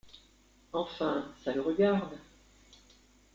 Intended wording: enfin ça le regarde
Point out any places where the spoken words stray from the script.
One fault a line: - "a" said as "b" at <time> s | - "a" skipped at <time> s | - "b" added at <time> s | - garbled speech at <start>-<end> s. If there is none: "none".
none